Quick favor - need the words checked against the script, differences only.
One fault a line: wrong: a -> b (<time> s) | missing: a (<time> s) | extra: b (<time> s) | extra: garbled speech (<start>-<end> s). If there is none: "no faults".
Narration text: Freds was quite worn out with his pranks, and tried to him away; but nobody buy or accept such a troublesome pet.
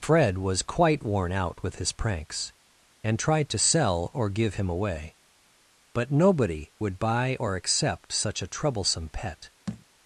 wrong: Freds -> Fred (0.0 s)
extra: sell or give (3.6 s)
extra: would (6.8 s)